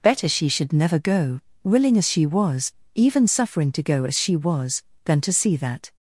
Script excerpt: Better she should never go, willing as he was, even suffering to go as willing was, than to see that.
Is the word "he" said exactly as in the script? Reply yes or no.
no